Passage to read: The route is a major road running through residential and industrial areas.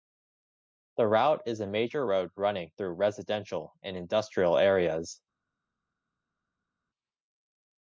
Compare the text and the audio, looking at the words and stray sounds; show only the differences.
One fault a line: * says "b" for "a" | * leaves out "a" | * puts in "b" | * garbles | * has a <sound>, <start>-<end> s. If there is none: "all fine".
all fine